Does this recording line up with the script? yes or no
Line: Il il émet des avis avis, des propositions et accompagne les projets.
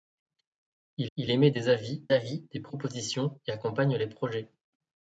yes